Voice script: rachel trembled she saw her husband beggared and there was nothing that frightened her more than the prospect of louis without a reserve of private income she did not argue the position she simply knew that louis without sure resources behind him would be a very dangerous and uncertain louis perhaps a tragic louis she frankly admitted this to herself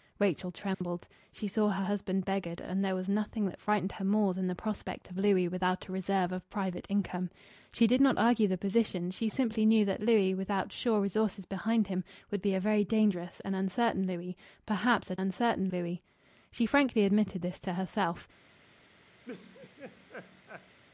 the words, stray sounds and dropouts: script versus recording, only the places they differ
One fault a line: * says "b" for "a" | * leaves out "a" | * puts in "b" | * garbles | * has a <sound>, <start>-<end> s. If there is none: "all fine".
* has a dropout, 0.7-0.8 s
* says "uncertain" for "tragic"
* has a laugh, 19.2-20.8 s